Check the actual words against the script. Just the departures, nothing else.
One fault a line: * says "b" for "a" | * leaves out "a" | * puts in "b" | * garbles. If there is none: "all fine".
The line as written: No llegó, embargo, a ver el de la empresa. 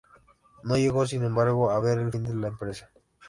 * puts in "sin"
* puts in "fin"